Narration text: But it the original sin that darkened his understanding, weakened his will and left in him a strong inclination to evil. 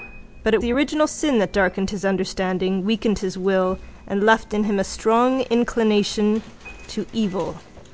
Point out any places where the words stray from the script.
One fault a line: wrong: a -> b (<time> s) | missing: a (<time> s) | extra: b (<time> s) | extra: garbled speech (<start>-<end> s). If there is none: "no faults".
no faults